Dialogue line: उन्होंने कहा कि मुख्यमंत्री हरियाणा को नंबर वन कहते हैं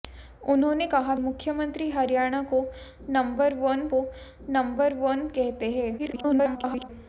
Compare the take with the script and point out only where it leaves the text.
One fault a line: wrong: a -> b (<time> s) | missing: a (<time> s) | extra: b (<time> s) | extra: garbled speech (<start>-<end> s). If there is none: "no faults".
missing: कि (1.1 s)
extra: को नंबर वन (3.9 s)
extra: garbled speech (6.0-6.9 s)